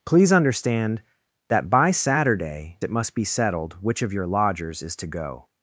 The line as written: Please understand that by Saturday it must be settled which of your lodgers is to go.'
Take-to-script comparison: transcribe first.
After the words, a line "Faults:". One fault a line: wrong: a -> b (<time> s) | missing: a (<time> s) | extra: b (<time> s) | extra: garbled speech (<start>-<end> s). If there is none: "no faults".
Please understand that by Saturday it must be settled which of your lodgers is to go.'
Faults:
no faults